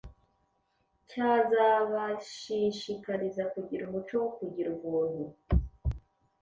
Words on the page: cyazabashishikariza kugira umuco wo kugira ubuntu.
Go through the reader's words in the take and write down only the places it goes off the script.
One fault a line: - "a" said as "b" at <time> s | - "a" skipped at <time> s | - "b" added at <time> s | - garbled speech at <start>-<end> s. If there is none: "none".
none